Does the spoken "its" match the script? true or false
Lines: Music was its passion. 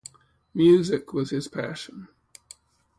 false